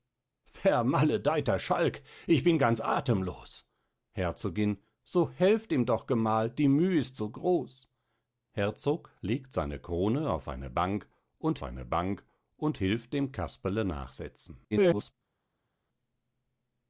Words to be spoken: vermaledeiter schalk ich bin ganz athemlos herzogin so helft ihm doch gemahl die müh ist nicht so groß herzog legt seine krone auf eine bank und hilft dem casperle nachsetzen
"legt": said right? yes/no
yes